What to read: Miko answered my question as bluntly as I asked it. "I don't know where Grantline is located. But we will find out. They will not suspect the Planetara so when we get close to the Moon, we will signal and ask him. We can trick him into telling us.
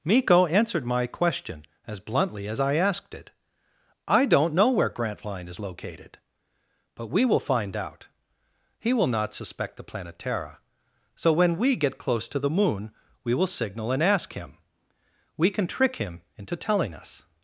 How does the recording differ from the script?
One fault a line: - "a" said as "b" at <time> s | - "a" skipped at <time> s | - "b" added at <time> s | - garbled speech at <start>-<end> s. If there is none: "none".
- "They" said as "He" at 8.8 s